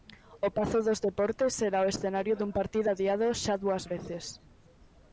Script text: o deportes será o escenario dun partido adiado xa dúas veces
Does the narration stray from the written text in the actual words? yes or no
yes